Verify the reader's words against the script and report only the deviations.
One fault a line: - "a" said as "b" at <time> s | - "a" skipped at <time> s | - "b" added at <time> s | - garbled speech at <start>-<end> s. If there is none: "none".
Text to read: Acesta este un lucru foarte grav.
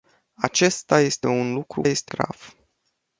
- "foarte" said as "este" at 1.8 s